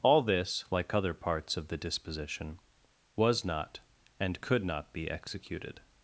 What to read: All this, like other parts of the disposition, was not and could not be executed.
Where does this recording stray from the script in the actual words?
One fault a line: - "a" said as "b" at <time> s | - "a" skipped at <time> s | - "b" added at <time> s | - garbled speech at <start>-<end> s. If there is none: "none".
none